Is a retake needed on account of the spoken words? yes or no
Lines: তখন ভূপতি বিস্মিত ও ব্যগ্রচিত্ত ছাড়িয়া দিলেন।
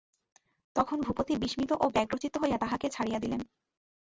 yes